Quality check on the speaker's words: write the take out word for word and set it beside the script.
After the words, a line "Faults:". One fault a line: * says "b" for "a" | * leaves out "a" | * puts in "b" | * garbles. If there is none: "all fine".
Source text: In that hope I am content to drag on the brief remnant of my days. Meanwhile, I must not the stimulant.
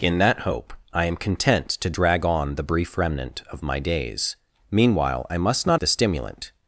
In that hope I am content to drag on the brief remnant of my days. Meanwhile, I must not the stimulant.
Faults:
all fine